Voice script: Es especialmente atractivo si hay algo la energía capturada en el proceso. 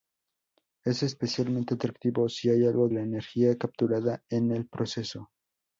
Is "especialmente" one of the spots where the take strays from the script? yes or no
no